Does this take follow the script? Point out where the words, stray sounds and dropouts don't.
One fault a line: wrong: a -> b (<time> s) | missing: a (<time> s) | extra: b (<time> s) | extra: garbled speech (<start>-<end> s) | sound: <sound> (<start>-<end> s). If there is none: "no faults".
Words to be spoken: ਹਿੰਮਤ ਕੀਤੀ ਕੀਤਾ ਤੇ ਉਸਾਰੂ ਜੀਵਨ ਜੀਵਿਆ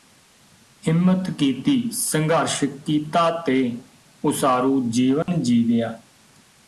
extra: ਸੰਘਰਸ਼ (1.9 s)
sound: dropout (5.2-5.3 s)